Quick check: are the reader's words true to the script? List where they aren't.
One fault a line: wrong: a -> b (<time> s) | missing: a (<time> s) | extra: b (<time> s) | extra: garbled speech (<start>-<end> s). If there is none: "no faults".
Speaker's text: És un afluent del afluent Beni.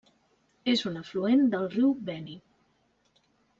wrong: afluent -> riu (1.8 s)